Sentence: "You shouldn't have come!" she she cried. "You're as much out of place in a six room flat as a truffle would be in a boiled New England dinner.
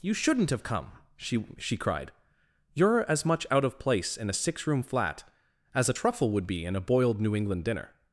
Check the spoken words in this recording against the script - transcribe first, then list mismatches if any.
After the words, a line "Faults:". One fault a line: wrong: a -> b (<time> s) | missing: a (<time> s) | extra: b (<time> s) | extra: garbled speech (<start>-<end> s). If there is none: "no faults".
"You shouldn't have come!" she she cried. "You're as much out of place in a six room flat as a truffle would be in a boiled New England dinner.
Faults:
no faults